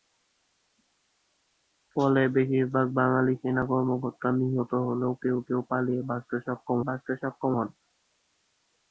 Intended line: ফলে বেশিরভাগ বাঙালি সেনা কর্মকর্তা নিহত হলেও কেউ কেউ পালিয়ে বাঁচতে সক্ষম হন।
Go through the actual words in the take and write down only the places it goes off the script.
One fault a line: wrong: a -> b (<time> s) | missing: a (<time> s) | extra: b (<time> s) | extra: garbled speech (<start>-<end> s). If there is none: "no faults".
extra: বাঁচতে সক্ষম (6.9 s)